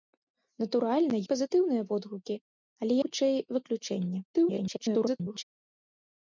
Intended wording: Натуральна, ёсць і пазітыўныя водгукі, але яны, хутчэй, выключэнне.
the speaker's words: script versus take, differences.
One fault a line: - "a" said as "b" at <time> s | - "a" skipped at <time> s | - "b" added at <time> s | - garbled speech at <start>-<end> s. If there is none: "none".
- "ёсць" skipped at 1.2 s
- "яны" skipped at 2.9 s
- garbled speech at 4.3-5.4 s